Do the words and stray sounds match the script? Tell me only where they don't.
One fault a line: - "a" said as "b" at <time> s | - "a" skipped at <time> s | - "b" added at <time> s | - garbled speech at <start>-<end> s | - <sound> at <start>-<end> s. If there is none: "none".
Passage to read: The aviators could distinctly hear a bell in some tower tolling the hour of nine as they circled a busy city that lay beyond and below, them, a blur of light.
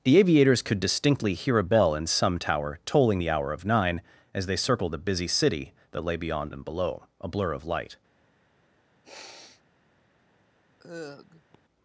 - "them" skipped at 7.0 s
- sniff at 9.0-9.6 s
- sigh at 10.8-11.6 s